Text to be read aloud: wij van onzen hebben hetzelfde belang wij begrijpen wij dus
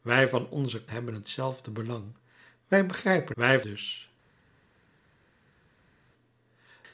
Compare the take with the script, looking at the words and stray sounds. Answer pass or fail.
pass